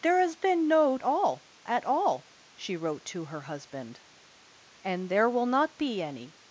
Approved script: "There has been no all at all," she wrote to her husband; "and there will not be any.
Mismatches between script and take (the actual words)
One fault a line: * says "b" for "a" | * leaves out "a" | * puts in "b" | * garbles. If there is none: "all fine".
all fine